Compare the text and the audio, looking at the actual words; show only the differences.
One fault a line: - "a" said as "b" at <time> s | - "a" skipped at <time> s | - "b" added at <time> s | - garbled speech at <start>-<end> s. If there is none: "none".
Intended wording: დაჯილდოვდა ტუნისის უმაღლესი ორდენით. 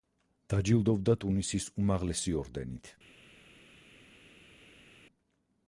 none